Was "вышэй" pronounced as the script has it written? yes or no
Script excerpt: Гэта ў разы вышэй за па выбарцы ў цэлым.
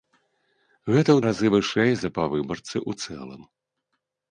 yes